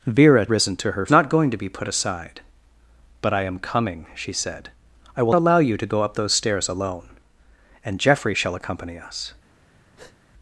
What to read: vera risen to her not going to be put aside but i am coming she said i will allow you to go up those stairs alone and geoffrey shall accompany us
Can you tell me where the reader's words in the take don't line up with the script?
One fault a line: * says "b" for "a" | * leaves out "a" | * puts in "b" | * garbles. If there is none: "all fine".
all fine